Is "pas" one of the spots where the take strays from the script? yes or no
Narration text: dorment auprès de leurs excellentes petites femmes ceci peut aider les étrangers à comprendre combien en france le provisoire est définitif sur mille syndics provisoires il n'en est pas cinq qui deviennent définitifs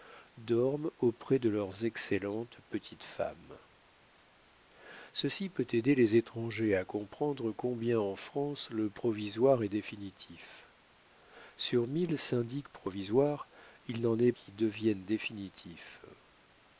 yes